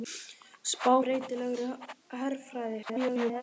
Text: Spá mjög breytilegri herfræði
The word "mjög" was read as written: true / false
false